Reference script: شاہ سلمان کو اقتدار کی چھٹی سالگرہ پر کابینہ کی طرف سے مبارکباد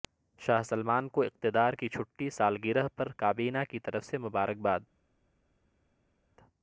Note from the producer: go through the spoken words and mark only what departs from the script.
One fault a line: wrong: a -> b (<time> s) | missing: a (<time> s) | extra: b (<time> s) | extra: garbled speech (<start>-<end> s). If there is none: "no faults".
no faults